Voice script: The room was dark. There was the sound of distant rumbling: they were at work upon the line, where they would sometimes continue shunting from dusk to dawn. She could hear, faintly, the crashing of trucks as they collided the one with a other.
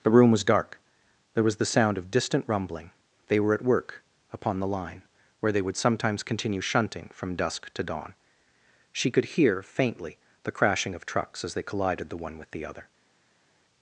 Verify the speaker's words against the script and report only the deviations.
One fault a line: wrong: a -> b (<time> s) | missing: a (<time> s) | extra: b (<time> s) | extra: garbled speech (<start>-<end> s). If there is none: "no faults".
wrong: a -> the (12.5 s)